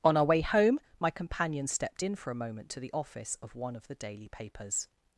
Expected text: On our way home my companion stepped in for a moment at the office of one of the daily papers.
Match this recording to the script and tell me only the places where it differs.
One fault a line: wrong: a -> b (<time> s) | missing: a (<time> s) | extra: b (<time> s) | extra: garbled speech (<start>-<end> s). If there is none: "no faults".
wrong: at -> to (2.7 s)